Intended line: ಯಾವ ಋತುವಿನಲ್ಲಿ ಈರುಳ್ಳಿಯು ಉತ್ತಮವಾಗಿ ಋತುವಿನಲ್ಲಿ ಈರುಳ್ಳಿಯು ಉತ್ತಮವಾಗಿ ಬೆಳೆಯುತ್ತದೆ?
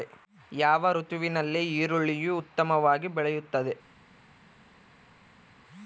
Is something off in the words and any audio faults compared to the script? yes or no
yes